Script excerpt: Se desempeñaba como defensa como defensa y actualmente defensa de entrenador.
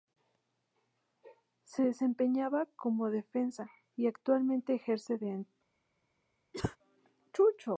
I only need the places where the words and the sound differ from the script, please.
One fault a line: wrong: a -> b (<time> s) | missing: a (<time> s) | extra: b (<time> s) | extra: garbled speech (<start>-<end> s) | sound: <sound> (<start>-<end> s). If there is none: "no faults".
missing: como defensa (3.7 s)
wrong: defensa -> ejerce (4.7 s)
sound: cough (6.5-6.8 s)